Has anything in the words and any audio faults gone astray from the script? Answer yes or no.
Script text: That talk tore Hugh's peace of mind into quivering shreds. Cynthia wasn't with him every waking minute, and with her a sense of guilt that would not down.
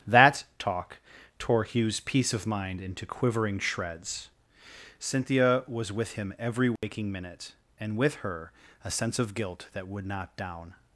yes